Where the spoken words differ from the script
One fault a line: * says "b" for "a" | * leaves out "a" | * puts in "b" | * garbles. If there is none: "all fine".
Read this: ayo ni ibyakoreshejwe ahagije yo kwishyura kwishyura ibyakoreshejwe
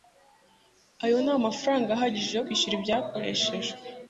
* says "amafaranga" for "ibyakoreshejwe"
* leaves out "kwishyura"